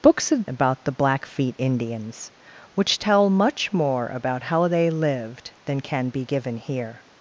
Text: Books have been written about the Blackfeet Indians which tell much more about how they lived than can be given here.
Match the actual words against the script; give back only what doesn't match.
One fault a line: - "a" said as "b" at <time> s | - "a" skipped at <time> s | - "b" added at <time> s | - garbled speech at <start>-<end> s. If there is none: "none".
- "been written" skipped at 0.5 s